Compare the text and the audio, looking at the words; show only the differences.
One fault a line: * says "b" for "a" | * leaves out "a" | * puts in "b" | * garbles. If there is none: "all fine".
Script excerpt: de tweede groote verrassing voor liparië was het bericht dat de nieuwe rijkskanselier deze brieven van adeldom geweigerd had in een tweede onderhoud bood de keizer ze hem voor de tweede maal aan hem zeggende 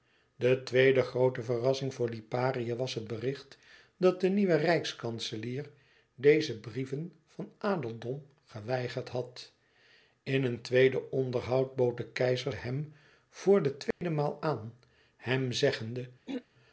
* leaves out "ze"